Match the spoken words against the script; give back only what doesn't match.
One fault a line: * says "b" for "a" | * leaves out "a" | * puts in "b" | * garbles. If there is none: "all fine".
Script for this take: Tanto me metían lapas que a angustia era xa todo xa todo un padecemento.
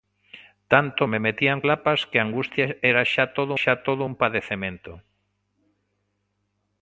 all fine